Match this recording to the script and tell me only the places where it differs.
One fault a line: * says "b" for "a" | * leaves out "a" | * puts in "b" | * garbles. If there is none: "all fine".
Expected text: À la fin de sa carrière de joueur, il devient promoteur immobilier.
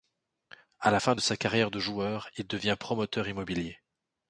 all fine